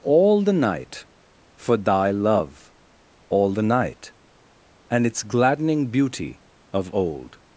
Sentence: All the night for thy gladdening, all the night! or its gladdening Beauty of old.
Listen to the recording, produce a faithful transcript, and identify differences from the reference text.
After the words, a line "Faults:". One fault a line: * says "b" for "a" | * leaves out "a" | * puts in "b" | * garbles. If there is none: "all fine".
All the night for thy love, all the night! and its gladdening Beauty of old.
Faults:
* says "love" for "gladdening"
* says "and" for "or"